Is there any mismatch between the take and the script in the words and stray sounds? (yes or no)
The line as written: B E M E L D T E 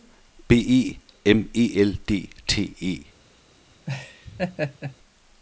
yes